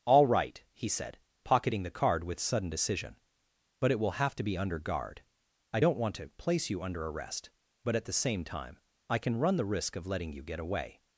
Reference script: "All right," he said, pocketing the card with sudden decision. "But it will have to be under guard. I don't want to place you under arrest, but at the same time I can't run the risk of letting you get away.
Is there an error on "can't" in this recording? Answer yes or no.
yes